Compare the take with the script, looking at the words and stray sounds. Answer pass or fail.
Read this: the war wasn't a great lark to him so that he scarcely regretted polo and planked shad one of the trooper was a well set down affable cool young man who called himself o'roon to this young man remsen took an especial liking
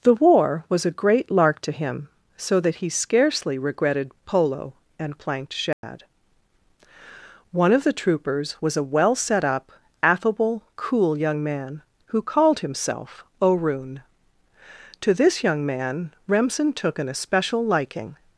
fail